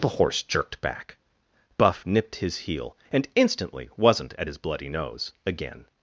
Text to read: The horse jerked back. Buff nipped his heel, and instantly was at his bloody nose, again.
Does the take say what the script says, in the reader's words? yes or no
no